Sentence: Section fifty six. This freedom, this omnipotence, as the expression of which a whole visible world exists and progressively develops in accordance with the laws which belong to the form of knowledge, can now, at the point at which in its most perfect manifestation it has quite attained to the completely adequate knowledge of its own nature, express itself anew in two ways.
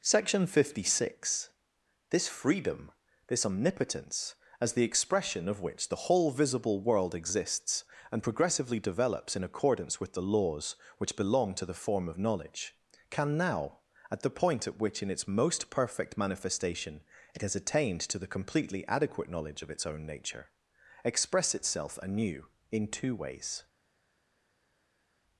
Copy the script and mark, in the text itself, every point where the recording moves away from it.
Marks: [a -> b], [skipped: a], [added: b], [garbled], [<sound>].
Section fifty six. This freedom, this omnipotence, as the expression of which [a -> the] whole visible world exists and progressively develops in accordance with the laws which belong to the form of knowledge, can now, at the point at which in its most perfect manifestation it has [skipped: quite] attained to the completely adequate knowledge of its own nature, express itself anew in two ways.